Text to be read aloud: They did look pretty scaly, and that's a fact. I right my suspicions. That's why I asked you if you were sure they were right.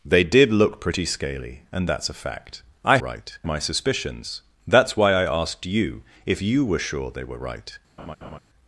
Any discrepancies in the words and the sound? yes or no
yes